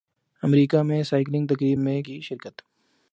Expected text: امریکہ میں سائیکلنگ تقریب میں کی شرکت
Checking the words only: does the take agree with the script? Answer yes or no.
yes